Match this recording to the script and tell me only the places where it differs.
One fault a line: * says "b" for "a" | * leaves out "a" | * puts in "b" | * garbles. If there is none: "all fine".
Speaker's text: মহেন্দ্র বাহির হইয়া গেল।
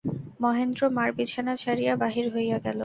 * puts in "মার বিছানা ছাড়িয়া"